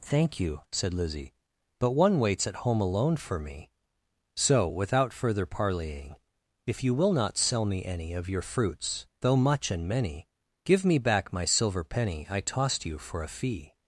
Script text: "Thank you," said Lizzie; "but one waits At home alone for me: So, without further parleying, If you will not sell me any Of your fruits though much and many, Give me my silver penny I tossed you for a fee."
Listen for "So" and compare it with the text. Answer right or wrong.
right